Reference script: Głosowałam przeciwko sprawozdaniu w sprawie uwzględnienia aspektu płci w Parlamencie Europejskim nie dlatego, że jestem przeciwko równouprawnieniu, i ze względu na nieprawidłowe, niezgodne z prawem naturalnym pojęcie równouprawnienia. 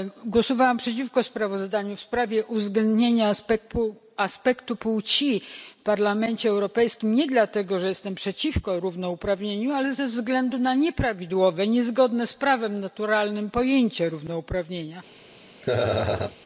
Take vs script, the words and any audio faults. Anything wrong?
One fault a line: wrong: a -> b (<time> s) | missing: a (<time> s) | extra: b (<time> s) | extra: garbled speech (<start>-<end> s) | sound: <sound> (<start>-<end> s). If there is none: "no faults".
wrong: i -> ale (9.7 s)
sound: laugh (15.6-16.4 s)